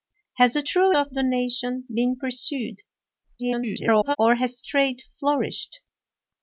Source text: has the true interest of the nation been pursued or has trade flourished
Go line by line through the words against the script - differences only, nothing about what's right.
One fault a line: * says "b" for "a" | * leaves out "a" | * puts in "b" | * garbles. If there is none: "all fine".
* leaves out "interest"
* garbles